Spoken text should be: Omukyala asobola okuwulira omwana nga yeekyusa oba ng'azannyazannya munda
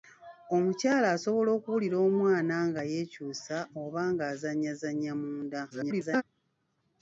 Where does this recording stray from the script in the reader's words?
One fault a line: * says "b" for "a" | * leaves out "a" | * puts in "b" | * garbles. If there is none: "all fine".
* garbles